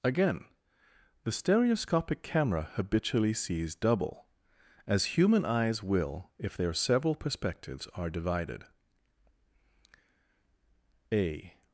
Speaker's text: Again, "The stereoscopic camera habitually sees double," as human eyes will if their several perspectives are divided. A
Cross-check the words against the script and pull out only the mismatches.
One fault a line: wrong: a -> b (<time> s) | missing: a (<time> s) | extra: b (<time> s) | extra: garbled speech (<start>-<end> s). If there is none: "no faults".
no faults